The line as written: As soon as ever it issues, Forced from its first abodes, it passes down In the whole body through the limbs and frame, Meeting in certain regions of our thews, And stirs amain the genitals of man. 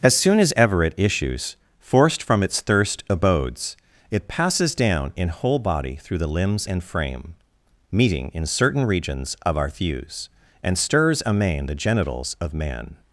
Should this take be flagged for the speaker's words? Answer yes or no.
yes